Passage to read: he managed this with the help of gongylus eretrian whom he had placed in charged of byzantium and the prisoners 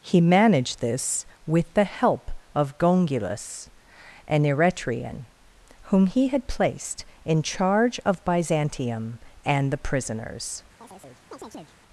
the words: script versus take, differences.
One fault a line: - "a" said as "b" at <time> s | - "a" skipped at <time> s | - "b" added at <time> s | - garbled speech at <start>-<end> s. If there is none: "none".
- "an" added at 4.3 s
- "charged" said as "charge" at 7.4 s